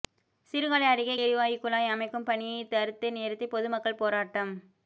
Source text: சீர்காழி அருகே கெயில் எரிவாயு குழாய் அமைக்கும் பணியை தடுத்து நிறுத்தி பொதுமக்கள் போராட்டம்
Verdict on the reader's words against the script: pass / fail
fail